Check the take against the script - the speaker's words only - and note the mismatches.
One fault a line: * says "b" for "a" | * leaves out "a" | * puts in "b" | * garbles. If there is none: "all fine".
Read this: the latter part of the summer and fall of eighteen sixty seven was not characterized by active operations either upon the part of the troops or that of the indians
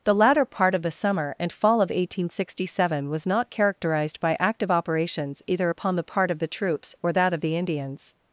all fine